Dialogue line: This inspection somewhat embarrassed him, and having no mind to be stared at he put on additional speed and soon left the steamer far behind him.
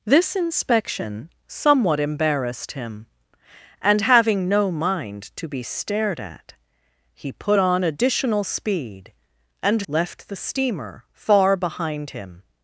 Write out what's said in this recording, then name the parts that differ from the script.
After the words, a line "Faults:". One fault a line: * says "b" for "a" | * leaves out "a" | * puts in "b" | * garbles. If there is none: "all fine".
This inspection somewhat embarrassed him, and having no mind to be stared at he put on additional speed and left the steamer far behind him.
Faults:
* leaves out "soon"